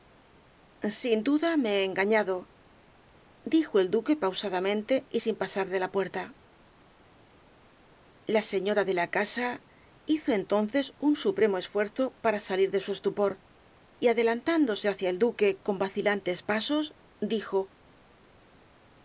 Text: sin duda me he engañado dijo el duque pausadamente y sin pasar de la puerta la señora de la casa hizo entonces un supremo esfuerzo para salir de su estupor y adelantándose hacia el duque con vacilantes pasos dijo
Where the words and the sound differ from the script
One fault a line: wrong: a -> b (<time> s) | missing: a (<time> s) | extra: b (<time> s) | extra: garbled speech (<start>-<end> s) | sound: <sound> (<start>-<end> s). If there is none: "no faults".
no faults